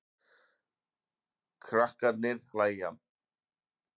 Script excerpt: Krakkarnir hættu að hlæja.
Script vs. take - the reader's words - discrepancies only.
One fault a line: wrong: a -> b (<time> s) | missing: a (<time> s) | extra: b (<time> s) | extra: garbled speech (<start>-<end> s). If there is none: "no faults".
missing: hættu að (2.4 s)